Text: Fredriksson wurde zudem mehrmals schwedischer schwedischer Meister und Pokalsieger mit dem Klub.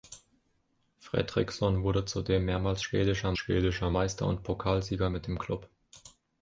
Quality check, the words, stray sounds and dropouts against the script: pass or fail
pass